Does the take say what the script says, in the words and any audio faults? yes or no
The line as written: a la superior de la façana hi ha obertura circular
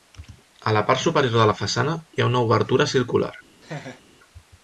no